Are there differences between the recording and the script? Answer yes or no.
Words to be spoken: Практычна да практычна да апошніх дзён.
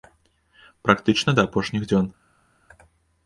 yes